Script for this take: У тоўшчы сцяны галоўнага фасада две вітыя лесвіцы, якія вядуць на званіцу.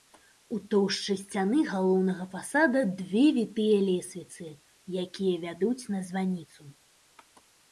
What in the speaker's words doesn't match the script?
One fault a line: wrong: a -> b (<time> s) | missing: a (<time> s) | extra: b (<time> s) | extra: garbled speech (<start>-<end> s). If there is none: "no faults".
no faults